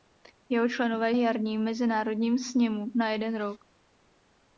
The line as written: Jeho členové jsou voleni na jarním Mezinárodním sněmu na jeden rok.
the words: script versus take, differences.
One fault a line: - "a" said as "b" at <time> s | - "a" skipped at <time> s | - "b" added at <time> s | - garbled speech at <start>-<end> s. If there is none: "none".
- "jsou voleni na" skipped at 1.1 s